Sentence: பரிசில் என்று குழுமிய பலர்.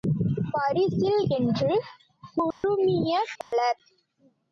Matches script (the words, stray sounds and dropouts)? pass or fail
fail